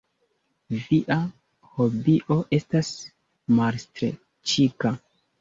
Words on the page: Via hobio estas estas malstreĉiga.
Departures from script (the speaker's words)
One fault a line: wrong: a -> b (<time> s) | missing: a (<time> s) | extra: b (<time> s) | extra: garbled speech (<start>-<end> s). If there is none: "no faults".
missing: estas (2.9 s)